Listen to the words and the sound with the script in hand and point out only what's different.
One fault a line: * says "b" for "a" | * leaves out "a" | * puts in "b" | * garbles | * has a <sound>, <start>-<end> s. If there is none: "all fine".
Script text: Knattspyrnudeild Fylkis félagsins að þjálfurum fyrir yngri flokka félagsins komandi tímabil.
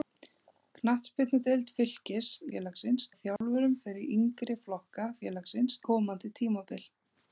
* has a dropout, 3.4-3.4 s